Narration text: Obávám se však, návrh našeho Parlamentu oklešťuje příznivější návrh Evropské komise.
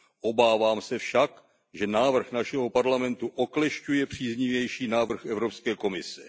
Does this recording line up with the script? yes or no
no